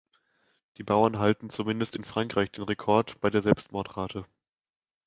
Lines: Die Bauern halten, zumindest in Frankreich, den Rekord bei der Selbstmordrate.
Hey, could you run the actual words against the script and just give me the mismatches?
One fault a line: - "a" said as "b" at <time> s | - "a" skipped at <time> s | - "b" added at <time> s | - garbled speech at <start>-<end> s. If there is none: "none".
none